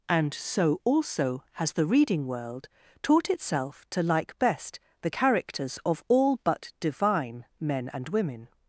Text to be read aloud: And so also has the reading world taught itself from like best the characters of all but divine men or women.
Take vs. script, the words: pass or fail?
fail